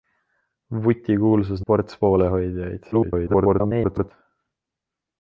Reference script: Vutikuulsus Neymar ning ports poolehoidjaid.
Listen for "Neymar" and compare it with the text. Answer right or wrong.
wrong